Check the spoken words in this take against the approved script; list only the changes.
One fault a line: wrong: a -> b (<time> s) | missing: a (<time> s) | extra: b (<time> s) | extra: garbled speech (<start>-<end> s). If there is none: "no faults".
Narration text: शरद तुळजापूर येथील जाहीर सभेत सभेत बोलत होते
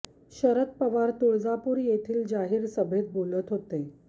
extra: पवार (0.8 s)
missing: सभेत (3.1 s)